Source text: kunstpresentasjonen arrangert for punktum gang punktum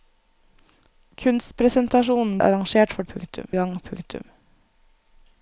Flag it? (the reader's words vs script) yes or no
no